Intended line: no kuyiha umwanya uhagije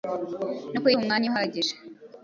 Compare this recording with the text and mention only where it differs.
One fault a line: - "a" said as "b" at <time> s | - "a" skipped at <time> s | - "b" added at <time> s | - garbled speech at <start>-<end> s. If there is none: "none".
none